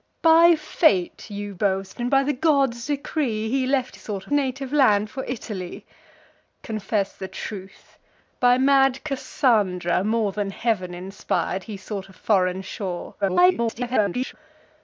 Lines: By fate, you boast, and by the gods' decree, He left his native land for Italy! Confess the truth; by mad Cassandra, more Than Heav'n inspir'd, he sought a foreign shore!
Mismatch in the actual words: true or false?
true